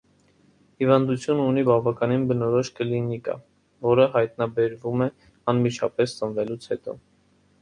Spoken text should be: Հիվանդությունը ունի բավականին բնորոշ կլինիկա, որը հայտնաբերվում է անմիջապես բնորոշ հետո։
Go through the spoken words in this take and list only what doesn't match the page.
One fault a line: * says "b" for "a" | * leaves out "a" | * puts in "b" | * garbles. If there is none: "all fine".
* says "ծնվելուց" for "բնորոշ"